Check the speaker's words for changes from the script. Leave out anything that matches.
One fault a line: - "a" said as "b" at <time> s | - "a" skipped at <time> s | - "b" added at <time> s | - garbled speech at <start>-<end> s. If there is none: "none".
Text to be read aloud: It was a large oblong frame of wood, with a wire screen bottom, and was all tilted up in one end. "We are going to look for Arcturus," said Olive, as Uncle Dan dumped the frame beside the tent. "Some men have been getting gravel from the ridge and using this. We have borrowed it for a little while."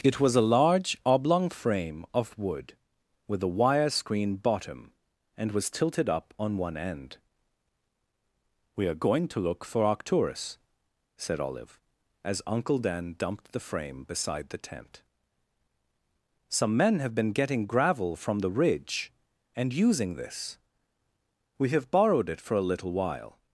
- "all" skipped at 5.7 s
- "in" said as "on" at 6.4 s